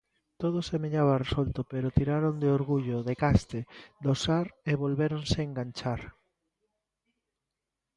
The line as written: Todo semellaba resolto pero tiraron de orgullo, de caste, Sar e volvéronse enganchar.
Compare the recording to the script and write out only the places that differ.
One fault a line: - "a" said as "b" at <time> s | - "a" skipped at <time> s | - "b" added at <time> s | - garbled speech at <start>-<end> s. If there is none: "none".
- "do" added at 4.0 s